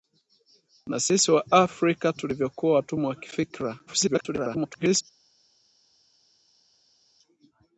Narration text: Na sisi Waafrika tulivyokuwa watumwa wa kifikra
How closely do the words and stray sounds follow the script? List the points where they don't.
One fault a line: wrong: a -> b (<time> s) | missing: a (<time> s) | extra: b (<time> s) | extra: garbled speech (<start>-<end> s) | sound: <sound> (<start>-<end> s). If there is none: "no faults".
extra: garbled speech (3.9-5.0 s)